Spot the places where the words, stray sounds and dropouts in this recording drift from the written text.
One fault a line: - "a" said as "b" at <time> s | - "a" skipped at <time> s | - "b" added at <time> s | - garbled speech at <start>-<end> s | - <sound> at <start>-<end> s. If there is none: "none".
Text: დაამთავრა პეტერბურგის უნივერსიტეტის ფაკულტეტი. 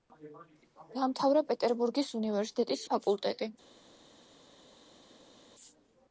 none